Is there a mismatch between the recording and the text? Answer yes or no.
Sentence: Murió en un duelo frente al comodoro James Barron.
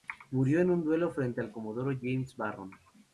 no